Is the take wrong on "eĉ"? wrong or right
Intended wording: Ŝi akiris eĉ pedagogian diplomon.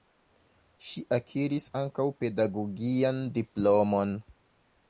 wrong